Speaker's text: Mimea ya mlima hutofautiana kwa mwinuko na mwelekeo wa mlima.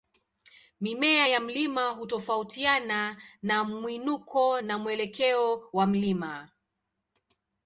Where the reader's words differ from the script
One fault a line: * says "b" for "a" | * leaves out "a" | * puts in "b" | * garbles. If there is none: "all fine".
* says "na" for "kwa"